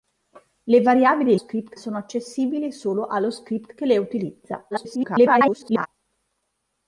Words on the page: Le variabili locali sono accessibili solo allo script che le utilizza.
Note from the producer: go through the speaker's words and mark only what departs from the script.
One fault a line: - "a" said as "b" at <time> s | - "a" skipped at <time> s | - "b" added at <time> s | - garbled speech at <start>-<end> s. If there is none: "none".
- "locali" said as "script" at 1.3 s
- garbled speech at 4.7-5.9 s